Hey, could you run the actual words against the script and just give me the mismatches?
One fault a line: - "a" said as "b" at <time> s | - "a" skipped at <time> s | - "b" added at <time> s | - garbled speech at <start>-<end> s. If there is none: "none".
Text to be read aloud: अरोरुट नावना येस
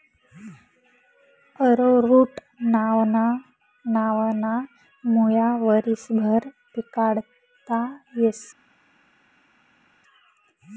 - "मुया वरीसभर पिकाडता" added at 5.0 s